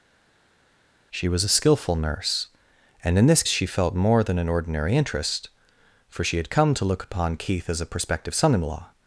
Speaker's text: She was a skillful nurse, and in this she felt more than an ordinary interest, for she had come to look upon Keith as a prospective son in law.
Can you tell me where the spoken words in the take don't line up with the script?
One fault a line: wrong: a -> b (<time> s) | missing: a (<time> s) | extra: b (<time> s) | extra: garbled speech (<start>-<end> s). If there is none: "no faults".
no faults